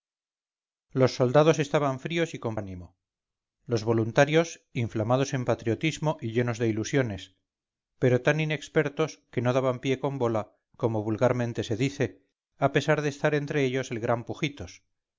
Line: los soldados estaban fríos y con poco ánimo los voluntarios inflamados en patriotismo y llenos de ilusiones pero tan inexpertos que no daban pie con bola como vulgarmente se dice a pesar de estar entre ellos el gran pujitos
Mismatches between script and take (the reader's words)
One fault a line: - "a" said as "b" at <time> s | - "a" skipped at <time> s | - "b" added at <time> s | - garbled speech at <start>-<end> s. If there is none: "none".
- "poco" skipped at 2.6 s